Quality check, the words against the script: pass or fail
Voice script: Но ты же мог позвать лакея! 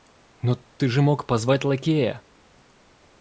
pass